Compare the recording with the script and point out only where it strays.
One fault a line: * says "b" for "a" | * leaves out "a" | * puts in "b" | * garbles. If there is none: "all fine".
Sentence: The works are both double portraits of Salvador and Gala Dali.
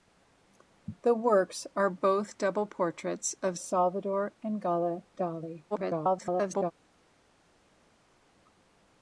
* garbles